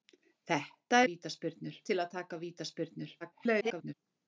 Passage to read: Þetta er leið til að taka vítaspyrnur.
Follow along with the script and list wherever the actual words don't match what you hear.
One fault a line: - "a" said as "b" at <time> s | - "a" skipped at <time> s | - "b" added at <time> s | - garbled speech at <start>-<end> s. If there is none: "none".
- "leið" said as "vítaspyrnur" at 1.1 s
- garbled speech at 3.2-3.9 s